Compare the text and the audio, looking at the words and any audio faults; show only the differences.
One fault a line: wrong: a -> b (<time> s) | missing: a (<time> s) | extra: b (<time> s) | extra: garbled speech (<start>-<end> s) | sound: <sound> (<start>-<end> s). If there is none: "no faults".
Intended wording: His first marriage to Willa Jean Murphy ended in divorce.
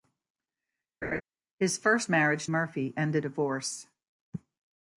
sound: laugh (1.0-1.2 s)
missing: to Willa Jean (2.5 s)
missing: in (3.3 s)